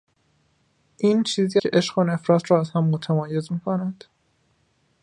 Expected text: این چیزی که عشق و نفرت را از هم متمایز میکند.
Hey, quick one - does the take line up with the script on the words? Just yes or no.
yes